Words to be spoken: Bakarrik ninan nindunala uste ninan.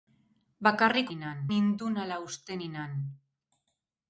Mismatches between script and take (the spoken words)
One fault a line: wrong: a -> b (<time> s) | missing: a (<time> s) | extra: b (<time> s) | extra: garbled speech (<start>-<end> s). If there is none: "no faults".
no faults